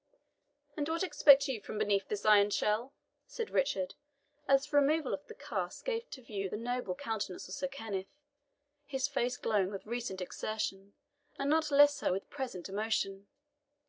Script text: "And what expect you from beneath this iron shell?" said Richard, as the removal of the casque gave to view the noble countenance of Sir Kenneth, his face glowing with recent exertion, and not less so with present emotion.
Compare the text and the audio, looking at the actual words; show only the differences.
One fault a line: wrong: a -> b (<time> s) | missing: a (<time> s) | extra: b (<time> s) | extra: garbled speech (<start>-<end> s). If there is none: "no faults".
no faults